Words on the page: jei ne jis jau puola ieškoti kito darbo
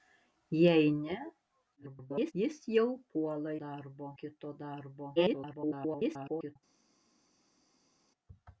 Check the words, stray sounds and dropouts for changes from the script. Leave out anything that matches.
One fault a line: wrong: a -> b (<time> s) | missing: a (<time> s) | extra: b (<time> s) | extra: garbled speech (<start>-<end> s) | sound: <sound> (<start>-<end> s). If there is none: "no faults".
extra: garbled speech (1.8-2.3 s)
wrong: ieškoti -> darbo (3.6 s)
extra: garbled speech (5.2-6.6 s)